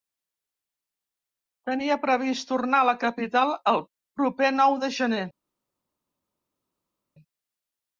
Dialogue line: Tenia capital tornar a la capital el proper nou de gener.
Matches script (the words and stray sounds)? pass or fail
fail